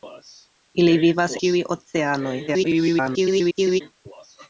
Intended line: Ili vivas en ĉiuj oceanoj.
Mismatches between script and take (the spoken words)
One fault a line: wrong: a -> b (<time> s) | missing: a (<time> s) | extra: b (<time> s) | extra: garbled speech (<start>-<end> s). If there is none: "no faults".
missing: en (1.4 s)
extra: garbled speech (2.5-3.8 s)